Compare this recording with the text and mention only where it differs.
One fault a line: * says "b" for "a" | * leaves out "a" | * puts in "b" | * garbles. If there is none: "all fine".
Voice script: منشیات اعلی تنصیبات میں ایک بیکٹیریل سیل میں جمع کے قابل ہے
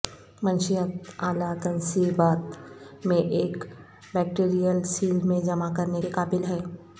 * puts in "کرنے"